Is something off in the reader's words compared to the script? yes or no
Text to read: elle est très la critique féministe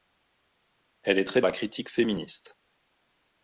no